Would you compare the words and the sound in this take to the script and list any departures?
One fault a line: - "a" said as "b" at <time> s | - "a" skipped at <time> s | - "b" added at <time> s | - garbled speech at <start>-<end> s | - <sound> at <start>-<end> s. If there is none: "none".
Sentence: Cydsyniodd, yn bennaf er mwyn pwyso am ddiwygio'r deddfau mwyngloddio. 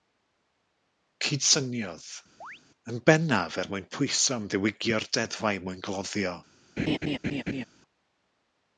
- chirp at 2.4-2.6 s
- laugh at 6.8-7.6 s